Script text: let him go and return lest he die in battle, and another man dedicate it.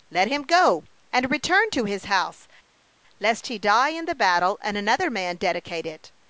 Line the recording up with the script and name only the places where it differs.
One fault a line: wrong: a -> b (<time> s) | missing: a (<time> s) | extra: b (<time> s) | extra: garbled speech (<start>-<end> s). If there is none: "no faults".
extra: to his house (1.7 s)
extra: the (4.0 s)